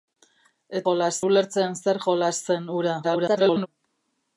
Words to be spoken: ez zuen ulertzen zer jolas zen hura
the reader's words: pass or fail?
fail